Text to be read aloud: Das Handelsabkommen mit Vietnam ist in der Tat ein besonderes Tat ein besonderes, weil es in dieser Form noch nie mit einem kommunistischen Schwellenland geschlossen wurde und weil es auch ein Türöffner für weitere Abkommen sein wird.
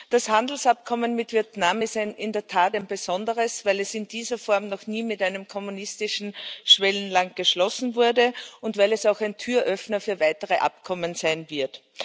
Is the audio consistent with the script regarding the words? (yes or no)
no